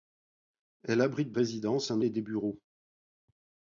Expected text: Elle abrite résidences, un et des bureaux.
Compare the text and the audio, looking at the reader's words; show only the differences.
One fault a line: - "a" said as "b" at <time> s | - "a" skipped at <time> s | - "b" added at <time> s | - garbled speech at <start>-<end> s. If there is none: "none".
none